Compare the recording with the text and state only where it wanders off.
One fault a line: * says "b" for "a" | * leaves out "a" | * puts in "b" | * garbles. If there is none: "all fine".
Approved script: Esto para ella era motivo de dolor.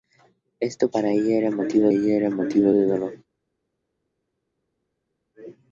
* puts in "ella era motivo"